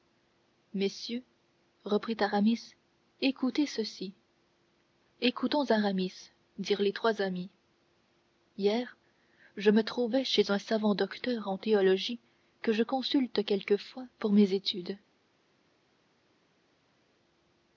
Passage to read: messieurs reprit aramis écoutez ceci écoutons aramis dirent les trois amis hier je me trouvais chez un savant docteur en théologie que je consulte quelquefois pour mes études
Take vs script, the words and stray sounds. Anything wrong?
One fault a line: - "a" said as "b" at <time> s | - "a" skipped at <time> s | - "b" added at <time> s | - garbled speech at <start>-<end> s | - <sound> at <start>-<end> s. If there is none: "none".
none